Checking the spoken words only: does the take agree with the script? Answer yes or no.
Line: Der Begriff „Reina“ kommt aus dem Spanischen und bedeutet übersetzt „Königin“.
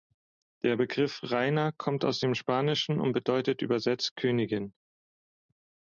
yes